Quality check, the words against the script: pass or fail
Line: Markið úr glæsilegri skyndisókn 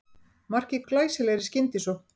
pass